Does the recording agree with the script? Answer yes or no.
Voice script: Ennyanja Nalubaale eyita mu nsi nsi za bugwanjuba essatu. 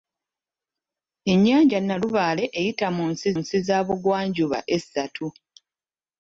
yes